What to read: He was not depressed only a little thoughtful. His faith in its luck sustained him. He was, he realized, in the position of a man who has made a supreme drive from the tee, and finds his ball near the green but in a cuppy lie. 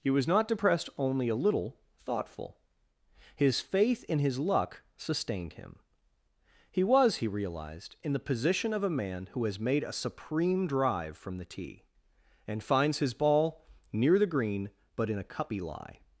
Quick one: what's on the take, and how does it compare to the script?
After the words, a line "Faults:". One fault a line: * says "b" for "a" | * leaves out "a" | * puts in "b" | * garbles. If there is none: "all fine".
He was not depressed only a little thoughtful. His faith in his luck sustained him. He was, he realized, in the position of a man who has made a supreme drive from the tee, and finds his ball near the green but in a cuppy lie.
Faults:
* says "his" for "its"